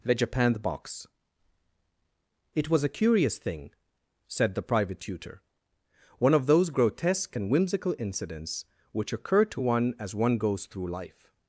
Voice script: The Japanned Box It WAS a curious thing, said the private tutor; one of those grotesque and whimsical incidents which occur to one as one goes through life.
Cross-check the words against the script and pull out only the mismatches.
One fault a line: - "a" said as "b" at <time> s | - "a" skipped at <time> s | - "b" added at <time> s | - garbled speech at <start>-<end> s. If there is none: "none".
none